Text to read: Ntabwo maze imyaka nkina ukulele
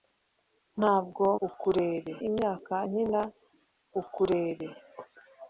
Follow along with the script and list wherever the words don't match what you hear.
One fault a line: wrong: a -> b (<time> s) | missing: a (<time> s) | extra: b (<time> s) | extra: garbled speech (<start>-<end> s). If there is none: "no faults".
wrong: maze -> ukulele (1.5 s)